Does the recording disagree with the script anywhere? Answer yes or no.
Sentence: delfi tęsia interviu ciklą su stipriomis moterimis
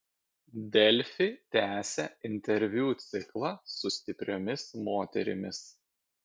no